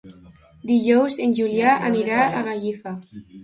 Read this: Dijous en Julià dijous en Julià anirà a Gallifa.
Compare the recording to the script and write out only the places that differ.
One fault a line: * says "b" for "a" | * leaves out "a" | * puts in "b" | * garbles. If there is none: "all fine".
* leaves out "dijous en Julià"